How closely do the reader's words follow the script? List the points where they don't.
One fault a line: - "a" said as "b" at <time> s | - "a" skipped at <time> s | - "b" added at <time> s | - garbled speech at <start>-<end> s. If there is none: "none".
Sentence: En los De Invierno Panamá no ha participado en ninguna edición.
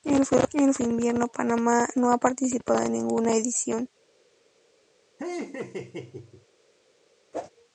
none